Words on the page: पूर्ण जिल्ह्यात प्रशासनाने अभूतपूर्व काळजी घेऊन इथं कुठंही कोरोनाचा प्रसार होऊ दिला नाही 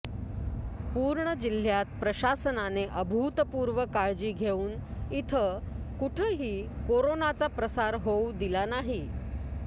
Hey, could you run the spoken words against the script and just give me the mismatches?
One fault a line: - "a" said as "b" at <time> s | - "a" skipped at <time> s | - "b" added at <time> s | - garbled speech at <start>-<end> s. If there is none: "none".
none